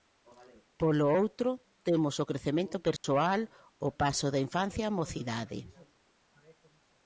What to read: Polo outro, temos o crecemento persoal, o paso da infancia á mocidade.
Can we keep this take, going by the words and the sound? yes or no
no